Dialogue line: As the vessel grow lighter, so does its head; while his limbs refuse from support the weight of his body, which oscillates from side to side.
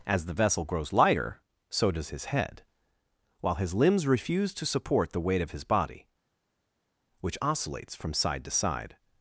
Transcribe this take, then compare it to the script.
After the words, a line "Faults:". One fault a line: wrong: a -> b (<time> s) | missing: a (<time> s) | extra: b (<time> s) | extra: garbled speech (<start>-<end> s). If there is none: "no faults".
As the vessel grows lighter, so does his head; while his limbs refuse to support the weight of his body, which oscillates from side to side.
Faults:
wrong: grow -> grows (0.7 s)
wrong: its -> his (2.1 s)
wrong: from -> to (4.5 s)